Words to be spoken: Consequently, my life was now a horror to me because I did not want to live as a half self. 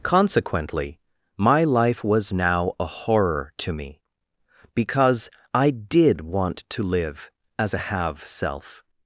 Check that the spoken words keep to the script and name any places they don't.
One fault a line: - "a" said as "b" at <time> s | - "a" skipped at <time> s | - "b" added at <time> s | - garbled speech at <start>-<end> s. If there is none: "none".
- "not" skipped at 6.2 s
- "half" said as "have" at 7.9 s